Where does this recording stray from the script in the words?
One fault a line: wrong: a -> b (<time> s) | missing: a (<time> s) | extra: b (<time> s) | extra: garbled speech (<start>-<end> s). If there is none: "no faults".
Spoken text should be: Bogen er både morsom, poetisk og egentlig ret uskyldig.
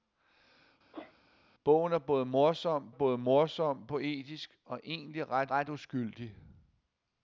extra: både morsom (2.9 s)
extra: ret (5.5 s)